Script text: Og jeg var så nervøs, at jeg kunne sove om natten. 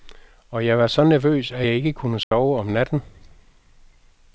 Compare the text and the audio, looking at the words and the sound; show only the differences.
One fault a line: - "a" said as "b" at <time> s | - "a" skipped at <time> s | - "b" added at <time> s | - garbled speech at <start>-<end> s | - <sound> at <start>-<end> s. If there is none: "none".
- "ikke" added at 1.7 s
- dropout at 2.2-2.3 s